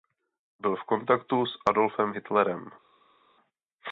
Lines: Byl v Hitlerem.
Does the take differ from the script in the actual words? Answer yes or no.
yes